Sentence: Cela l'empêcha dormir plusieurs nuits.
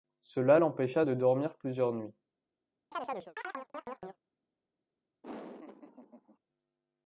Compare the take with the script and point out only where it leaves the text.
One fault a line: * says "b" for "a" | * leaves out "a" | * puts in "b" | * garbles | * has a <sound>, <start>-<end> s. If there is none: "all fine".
* puts in "de"
* has a chirp, 2.9-4.2 s
* has a laugh, 5.2-6.4 s